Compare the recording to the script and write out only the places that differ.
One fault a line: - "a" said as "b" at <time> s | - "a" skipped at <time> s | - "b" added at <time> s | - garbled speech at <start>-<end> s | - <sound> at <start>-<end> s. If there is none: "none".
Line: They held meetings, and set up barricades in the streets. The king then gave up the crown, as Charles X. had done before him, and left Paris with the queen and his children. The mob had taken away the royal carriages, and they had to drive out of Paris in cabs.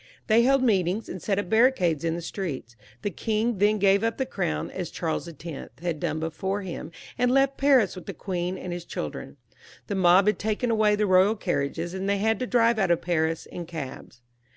none